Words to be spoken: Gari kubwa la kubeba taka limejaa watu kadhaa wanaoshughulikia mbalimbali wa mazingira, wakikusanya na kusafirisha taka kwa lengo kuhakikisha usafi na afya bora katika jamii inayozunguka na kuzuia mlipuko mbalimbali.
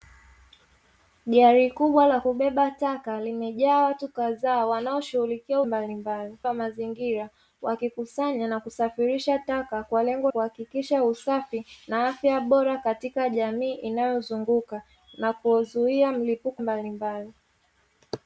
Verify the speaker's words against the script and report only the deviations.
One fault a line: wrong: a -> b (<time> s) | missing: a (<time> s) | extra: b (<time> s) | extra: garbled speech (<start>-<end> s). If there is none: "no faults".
no faults